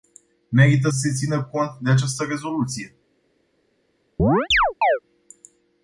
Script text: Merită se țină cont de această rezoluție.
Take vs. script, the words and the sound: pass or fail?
fail